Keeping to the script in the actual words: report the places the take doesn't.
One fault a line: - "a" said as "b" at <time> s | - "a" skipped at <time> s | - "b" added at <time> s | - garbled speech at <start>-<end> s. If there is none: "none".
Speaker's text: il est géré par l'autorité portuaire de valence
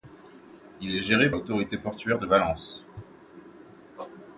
- "par" skipped at 1.3 s